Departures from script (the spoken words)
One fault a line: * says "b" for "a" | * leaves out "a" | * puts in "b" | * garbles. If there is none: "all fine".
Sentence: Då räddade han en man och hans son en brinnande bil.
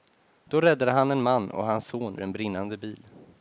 all fine